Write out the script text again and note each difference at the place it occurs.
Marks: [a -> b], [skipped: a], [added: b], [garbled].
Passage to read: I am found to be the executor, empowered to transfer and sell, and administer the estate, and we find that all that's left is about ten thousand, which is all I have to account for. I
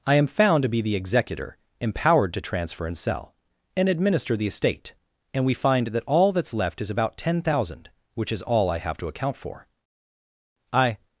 I am found to be the executor, empowered to transfer and sell, and administer the estate, and we find that all that's left is about ten thousand, which is all I have to account for. I